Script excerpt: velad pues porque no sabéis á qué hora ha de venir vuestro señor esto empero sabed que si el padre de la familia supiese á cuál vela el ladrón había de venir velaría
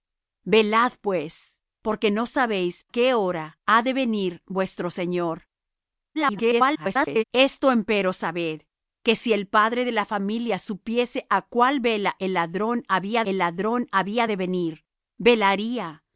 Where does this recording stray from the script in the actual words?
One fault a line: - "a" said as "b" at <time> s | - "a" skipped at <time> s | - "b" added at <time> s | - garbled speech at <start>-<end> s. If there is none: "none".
- "á" skipped at 2.9 s
- garbled speech at 6.1-7.2 s
- "el ladrón había" added at 13.2 s